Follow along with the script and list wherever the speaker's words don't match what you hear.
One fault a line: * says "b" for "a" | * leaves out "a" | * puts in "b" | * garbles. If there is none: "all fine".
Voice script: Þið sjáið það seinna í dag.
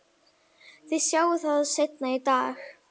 all fine